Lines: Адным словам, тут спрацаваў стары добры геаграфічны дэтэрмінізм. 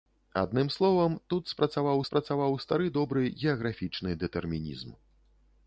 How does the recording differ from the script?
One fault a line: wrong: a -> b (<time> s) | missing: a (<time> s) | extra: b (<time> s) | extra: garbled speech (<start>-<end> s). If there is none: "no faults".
extra: спрацаваў (2.1 s)